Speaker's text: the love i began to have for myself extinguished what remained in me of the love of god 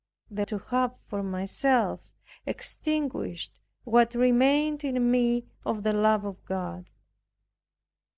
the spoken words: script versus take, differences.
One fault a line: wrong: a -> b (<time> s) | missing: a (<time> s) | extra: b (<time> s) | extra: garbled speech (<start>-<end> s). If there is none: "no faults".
missing: love i began (0.5 s)